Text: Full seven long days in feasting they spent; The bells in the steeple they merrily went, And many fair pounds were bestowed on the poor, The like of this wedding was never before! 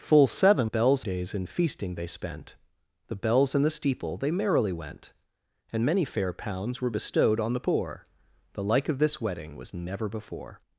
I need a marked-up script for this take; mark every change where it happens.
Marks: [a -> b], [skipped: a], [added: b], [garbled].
Full seven [long -> bells] days in feasting they spent; The bells in the steeple they merrily went, And many fair pounds were bestowed on the poor, The like of this wedding was never before!